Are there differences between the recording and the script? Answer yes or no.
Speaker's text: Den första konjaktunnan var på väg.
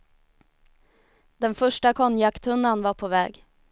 no